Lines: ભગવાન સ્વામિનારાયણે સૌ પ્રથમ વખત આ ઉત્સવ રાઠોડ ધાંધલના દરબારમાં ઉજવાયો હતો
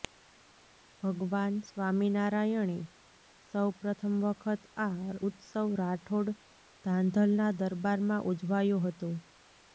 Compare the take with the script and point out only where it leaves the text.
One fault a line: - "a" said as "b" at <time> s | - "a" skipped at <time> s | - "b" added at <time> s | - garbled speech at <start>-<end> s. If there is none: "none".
none